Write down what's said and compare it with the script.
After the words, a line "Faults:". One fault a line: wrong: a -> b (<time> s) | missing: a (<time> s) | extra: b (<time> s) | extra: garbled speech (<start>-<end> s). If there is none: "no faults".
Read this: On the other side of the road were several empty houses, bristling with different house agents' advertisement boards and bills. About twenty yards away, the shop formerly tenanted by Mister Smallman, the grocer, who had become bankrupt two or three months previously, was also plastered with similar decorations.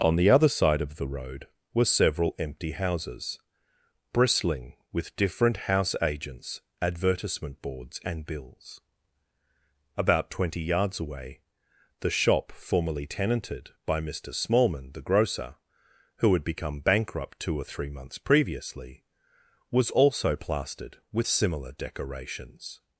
On the other side of the road were several empty houses, bristling with different house agents' advertisement boards and bills. About twenty yards away, the shop formerly tenanted by Mister Smallman, the grocer, who had become bankrupt two or three months previously, was also plastered with similar decorations.
Faults:
no faults